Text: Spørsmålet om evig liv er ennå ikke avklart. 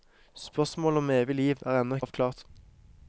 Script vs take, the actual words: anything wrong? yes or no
yes